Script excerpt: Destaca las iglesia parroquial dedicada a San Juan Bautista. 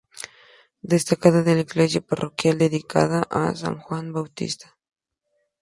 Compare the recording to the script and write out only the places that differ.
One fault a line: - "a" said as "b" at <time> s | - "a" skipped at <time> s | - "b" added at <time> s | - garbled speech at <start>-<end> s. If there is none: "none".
- "las" said as "la" at 1.3 s